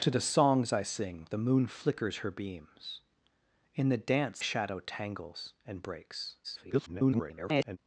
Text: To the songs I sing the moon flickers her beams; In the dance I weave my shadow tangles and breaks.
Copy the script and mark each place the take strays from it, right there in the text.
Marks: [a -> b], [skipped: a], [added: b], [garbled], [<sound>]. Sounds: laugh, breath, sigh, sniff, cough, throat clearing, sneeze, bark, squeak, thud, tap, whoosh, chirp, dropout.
To the songs I sing the moon flickers her beams; In the dance [skipped: I weave my] shadow tangles and breaks. [garbled]